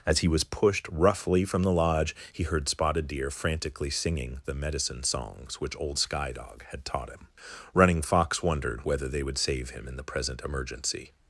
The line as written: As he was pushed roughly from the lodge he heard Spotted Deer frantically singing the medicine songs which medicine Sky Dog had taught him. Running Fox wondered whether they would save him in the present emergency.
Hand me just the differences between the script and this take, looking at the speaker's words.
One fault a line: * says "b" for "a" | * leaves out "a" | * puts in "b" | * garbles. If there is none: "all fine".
* says "old" for "medicine"